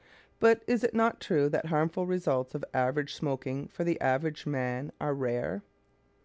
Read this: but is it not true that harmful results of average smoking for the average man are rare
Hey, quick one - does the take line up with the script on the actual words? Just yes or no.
yes